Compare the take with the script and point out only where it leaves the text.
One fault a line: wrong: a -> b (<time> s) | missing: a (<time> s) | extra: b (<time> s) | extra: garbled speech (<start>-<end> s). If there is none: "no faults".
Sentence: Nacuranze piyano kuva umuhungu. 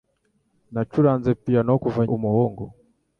no faults